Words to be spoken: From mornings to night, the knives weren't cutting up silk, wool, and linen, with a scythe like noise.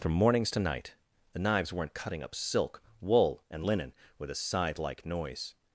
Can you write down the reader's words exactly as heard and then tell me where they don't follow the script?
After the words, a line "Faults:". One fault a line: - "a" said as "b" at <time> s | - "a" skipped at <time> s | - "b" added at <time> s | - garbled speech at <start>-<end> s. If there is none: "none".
From mornings to night, the knives weren't cutting up silk, wool, and linen, with a scythe like noise.
Faults:
none